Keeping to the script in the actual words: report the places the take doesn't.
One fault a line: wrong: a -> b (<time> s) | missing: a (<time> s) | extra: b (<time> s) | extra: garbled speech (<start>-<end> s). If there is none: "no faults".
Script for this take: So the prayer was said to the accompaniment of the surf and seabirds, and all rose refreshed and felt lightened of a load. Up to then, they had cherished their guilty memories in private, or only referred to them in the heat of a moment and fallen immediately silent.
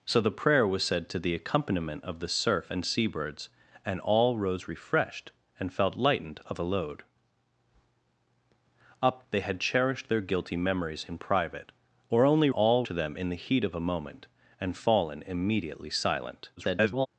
missing: to then (9.2 s)
wrong: referred -> all (12.5 s)
extra: garbled speech (16.6-17.1 s)